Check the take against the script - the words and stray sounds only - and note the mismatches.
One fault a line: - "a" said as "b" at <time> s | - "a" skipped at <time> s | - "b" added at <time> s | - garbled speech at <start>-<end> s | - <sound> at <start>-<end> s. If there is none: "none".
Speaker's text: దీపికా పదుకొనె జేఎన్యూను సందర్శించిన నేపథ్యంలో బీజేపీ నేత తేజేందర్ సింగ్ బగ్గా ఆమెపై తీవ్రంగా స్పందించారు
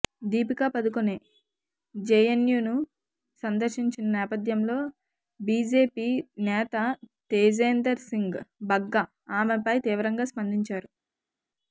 none